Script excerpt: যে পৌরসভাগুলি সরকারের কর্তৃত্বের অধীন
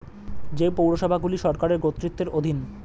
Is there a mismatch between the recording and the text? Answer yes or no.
no